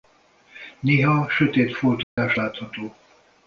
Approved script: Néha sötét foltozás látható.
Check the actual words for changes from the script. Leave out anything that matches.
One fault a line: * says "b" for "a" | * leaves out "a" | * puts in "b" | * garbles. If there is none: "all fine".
all fine